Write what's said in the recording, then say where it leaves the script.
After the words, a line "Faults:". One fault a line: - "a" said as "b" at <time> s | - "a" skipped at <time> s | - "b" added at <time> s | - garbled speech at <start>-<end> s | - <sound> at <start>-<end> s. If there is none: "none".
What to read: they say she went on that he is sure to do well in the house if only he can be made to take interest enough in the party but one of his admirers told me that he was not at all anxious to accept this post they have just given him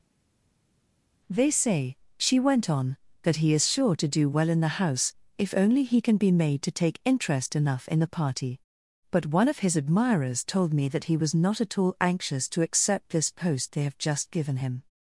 they say she went on that he is sure to do well in the house if only he can be made to take interest enough in the party but one of his admirers told me that he was not at all anxious to accept this post they have just given him
Faults:
none